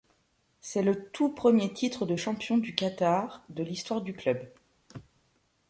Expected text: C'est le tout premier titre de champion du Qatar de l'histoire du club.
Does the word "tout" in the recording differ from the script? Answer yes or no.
no